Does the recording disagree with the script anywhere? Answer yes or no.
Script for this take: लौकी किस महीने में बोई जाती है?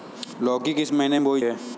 yes